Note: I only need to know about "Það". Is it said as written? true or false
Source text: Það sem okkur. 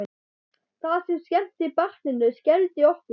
true